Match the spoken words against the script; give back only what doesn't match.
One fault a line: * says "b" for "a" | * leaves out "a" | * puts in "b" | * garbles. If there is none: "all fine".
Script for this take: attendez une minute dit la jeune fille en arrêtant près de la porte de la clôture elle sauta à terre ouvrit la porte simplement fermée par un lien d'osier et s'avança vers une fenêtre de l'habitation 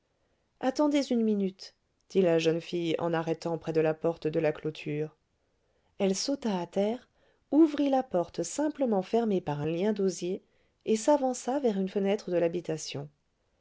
all fine